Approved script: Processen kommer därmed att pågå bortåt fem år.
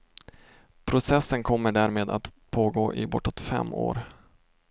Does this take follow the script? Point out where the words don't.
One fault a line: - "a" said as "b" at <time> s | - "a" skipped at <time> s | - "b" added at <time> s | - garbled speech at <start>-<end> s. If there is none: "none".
- "i" added at 3.0 s